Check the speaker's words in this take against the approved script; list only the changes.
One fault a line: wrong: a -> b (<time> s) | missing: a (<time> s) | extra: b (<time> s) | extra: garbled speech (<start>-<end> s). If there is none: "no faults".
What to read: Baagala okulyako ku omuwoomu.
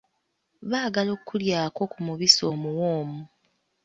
extra: mubisi (2.1 s)